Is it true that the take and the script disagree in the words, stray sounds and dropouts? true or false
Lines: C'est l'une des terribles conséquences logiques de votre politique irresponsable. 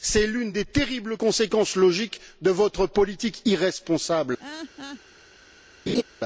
true